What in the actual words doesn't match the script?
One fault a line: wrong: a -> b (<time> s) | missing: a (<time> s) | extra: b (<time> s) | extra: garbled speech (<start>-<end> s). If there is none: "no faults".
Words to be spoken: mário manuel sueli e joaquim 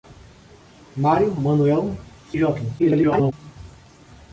missing: sueli (1.9 s)
extra: garbled speech (2.8-3.3 s)